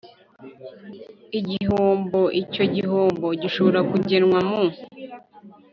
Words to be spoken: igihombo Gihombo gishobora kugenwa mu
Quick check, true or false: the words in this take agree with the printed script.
false